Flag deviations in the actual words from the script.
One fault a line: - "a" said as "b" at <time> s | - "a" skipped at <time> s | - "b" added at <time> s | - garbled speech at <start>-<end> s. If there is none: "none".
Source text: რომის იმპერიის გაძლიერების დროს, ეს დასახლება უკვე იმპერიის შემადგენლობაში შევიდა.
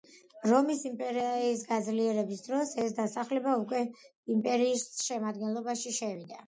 none